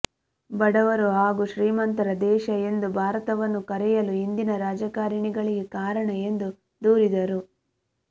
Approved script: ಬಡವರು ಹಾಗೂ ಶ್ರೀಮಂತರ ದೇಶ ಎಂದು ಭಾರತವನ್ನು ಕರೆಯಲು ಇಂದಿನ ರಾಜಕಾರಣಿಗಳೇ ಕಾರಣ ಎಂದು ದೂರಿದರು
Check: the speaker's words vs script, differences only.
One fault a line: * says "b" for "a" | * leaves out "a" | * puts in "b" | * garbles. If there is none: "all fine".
all fine